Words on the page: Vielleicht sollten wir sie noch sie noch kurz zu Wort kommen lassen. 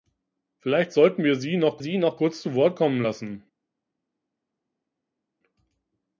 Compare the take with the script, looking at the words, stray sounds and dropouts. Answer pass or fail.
pass